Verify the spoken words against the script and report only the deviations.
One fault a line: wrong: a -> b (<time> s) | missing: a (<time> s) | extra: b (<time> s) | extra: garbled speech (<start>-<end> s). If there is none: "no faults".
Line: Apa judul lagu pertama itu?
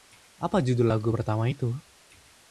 no faults